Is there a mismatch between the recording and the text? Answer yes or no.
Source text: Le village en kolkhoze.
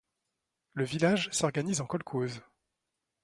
yes